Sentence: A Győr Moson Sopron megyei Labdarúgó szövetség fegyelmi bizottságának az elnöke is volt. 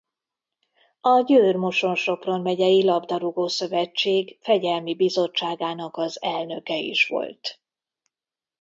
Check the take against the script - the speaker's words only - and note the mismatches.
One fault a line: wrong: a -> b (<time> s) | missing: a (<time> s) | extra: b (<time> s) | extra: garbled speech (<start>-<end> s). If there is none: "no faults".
no faults